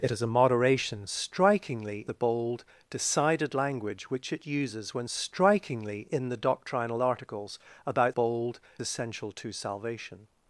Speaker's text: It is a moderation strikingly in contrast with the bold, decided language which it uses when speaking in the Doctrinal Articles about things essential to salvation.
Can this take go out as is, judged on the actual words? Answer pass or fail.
fail